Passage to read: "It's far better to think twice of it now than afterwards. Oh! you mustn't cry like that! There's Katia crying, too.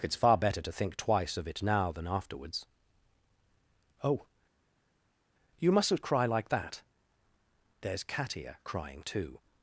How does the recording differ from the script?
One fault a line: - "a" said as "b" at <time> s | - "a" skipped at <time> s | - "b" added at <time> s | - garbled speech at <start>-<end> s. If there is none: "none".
none